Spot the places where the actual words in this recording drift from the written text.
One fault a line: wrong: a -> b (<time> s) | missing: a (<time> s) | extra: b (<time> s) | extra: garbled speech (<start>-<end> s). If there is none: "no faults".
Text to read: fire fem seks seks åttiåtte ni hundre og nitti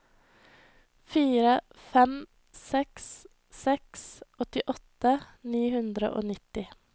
no faults